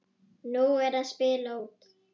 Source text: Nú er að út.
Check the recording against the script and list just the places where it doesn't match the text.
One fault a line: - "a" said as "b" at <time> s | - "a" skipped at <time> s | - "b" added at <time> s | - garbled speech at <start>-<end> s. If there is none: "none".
- "spila" added at 1.1 s